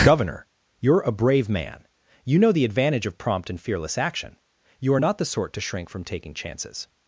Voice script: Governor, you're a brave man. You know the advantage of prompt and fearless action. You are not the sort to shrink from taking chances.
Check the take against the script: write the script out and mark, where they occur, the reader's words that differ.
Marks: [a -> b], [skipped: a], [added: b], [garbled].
Governor, you're a brave man. You know the advantage of prompt and fearless action. You are not the sort to shrink from taking chances.